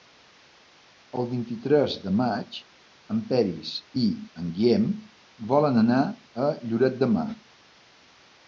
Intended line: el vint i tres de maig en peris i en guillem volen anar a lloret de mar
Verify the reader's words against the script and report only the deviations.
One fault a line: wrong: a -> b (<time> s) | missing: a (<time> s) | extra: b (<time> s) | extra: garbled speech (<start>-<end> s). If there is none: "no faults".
no faults